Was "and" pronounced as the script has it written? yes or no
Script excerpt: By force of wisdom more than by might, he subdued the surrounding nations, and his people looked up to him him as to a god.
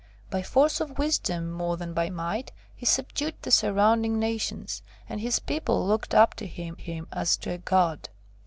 yes